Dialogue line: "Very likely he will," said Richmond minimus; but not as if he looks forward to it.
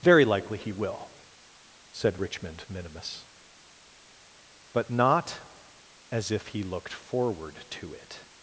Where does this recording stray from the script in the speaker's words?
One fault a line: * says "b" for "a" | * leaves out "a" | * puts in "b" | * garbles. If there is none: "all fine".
* says "looked" for "looks"